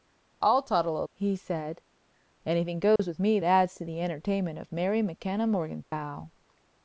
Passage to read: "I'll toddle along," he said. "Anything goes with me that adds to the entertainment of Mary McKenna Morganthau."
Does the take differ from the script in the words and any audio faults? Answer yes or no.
yes